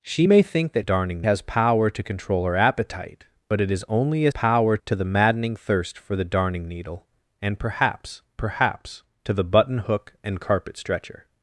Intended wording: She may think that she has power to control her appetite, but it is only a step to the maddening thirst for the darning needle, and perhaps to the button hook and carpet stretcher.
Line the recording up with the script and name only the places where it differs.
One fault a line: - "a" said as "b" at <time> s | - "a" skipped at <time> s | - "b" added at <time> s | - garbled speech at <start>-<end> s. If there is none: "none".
- "she" said as "darning" at 0.8 s
- "step" said as "power" at 4.3 s
- "perhaps" added at 8.4 s